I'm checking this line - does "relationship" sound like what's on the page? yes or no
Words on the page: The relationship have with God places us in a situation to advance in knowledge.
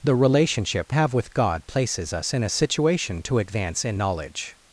yes